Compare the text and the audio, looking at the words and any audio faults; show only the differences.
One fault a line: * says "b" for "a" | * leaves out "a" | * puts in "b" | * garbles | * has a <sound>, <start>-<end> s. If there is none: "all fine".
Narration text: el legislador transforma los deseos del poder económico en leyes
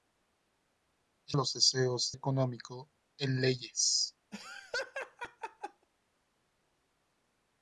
* leaves out "legislador transforma"
* leaves out "del poder"
* has a laugh, 4.3-5.9 s